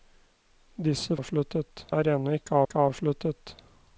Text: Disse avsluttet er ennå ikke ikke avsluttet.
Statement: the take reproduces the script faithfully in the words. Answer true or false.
true